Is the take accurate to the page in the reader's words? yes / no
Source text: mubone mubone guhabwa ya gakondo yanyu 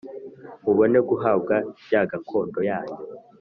no